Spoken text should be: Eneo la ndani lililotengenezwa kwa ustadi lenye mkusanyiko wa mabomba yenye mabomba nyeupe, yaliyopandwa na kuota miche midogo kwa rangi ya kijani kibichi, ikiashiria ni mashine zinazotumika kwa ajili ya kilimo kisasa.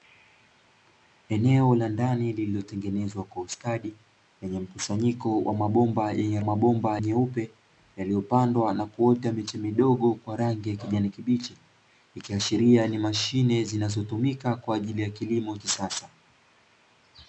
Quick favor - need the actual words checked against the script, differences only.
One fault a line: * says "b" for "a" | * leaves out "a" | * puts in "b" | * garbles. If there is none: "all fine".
all fine